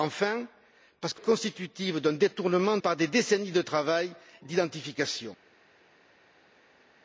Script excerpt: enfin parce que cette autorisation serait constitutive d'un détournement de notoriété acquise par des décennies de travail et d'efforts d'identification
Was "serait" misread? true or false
true